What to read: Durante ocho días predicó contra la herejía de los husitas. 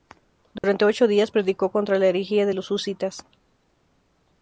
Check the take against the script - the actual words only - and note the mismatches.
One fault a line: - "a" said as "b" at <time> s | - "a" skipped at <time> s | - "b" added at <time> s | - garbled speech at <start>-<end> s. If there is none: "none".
none